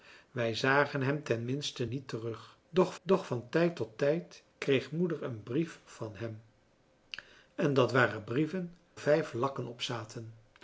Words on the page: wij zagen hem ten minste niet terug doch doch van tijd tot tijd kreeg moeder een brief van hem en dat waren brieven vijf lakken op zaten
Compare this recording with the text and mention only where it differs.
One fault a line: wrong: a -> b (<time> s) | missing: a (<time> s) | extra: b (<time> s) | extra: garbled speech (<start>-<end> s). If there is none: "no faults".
no faults